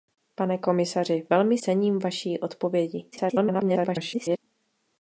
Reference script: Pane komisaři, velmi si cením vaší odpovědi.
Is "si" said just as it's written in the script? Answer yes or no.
no